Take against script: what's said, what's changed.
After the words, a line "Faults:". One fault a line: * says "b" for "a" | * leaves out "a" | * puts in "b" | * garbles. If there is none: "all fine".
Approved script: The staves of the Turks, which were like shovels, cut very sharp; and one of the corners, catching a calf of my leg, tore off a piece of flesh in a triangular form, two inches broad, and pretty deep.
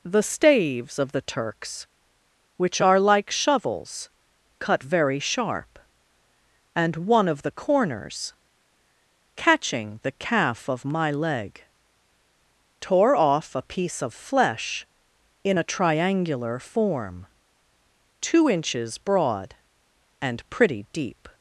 The staves of the Turks, which are like shovels, cut very sharp; and one of the corners, catching the calf of my leg, tore off a piece of flesh in a triangular form, two inches broad, and pretty deep.
Faults:
* says "are" for "were"
* says "the" for "a"